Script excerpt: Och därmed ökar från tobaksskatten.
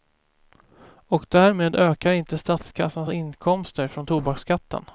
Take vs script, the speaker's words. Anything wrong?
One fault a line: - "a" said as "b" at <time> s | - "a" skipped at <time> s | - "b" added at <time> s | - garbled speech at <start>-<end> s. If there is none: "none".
- "inte statskassans inkomster" added at 2.1 s